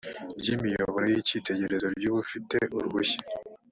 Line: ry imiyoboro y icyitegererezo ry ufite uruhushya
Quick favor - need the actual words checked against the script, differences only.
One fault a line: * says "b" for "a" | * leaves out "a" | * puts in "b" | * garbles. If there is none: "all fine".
all fine